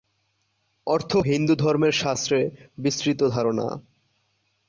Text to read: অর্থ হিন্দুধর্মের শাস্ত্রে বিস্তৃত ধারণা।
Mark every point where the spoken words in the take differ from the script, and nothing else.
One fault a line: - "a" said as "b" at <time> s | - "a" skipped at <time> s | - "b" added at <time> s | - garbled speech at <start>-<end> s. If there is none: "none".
none